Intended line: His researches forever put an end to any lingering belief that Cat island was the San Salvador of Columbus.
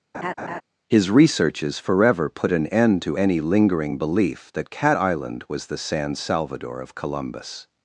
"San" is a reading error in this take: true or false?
false